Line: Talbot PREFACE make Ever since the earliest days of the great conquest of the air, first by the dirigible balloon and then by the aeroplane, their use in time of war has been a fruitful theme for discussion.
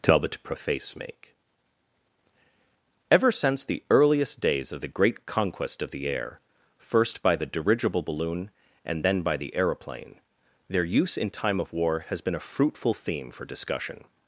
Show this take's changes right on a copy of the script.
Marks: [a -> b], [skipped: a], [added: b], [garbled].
Talbot PREFACE make Ever since the earliest days of the great conquest of the air, first by the dirigible balloon and then by the aeroplane, their use in time of war has been a fruitful theme for discussion.